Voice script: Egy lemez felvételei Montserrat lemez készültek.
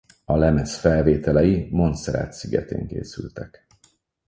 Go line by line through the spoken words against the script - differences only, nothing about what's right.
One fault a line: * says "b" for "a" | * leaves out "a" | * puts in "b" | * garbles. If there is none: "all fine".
* says "A" for "Egy"
* says "szigetén" for "lemez"